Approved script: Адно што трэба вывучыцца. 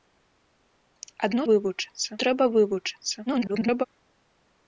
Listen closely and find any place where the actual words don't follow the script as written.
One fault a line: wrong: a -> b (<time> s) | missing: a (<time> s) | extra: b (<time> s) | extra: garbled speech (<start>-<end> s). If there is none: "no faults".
wrong: што -> вывучыцца (1.5 s)
extra: garbled speech (3.3-3.8 s)